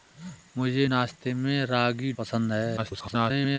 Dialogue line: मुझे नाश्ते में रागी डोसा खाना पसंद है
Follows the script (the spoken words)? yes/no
no